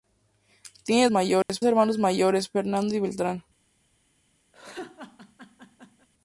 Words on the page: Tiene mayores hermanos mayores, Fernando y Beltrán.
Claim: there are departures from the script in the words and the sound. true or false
true